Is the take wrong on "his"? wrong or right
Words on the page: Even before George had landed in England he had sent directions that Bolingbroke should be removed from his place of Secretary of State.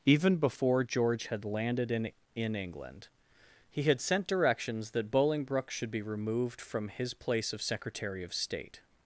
right